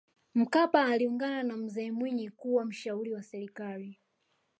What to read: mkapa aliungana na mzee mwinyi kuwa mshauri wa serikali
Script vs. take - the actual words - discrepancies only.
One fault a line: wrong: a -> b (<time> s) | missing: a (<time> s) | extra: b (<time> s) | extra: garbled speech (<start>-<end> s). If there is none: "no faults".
no faults